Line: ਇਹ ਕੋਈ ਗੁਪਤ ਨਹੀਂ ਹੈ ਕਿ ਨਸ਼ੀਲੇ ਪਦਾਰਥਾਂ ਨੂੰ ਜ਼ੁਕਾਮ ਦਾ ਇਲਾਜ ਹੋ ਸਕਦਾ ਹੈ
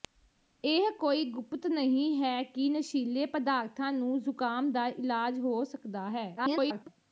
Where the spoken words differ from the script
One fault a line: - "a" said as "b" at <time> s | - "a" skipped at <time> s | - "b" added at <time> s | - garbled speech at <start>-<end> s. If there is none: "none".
- garbled speech at 6.4-6.9 s